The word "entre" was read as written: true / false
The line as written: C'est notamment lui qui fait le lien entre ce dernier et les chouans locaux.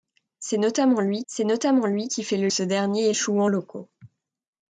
false